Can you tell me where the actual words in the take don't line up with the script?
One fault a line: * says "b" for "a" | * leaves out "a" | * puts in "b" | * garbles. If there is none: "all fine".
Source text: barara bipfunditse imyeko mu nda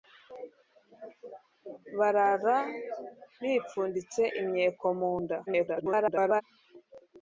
* garbles